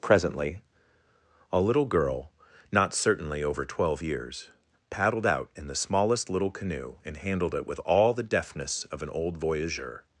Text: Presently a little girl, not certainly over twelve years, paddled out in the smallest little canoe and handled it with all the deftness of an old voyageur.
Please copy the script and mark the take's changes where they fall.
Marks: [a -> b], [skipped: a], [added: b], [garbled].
Presently a little girl, not certainly over twelve years, paddled out in the smallest little canoe and handled it with all the deftness of an old voyageur.